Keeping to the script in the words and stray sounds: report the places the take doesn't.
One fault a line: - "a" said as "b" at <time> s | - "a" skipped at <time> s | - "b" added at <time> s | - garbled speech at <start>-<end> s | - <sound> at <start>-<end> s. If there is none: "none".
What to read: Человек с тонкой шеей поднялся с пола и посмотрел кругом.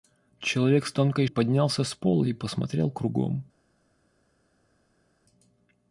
- "шеей" skipped at 1.3 s